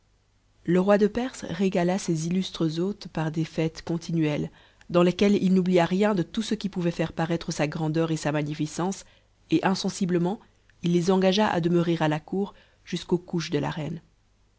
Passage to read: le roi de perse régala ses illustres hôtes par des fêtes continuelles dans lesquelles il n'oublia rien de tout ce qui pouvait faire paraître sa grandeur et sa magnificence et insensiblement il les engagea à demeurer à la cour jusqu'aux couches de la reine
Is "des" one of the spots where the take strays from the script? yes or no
no